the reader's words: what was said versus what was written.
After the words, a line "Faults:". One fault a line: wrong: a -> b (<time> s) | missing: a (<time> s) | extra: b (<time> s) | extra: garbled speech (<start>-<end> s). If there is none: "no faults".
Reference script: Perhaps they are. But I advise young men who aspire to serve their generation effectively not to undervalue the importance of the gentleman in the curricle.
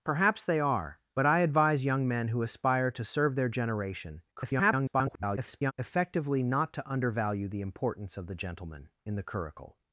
Perhaps they are. But I advise young men who aspire to serve their generation [garbled] effectively not to undervalue the importance of the gentleman in the curricle.
Faults:
extra: garbled speech (4.4-5.7 s)